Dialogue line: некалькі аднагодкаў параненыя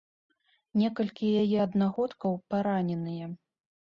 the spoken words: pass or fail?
fail